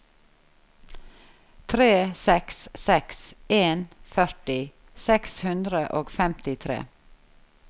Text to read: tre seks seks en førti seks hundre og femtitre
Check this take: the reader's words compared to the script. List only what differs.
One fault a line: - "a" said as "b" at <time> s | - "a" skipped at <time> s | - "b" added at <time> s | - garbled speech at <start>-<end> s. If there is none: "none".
none